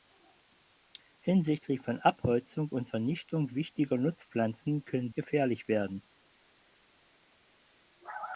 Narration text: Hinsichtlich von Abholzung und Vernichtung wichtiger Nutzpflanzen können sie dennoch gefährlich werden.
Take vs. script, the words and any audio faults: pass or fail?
fail